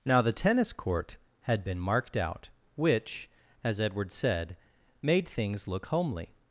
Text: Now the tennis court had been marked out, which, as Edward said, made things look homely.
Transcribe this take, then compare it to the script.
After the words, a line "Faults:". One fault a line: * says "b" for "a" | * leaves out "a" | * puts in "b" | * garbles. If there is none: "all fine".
Now the tennis court had been marked out, which, as Edward said, made things look homely.
Faults:
all fine